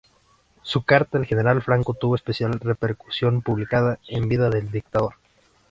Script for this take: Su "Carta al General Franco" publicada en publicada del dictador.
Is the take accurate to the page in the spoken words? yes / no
no